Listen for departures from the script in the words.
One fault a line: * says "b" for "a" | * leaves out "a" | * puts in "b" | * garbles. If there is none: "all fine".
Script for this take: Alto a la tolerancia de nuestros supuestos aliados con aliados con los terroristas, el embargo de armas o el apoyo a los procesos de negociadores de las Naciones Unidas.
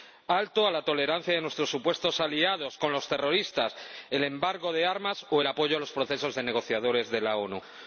* leaves out "aliados con"